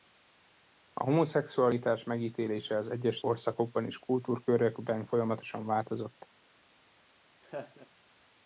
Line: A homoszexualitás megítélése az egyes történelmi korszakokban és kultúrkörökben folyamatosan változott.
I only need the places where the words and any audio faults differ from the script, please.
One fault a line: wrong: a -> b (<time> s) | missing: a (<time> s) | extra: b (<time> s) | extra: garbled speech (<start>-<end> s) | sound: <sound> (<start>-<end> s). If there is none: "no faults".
missing: történelmi (3.2 s)
sound: laugh (7.4-7.9 s)